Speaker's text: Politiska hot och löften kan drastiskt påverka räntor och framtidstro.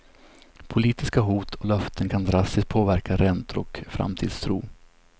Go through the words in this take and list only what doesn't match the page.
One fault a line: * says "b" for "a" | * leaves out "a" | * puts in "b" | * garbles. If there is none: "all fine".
all fine